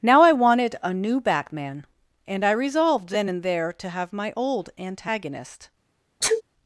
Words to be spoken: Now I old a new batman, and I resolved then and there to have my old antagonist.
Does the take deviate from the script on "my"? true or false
false